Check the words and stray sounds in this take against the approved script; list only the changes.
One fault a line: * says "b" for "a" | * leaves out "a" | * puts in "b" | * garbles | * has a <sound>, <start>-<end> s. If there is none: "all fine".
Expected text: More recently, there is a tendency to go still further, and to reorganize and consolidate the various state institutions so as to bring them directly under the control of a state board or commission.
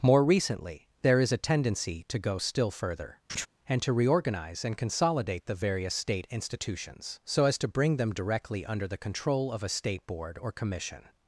* has a laugh, 3.3-3.5 s